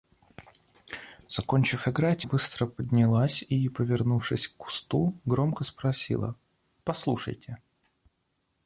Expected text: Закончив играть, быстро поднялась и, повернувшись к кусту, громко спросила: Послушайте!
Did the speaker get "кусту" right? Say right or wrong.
right